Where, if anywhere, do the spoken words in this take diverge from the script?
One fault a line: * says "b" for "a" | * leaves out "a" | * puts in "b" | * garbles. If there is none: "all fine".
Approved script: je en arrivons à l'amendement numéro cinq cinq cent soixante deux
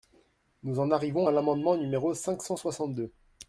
* says "nous" for "je"
* leaves out "cinq"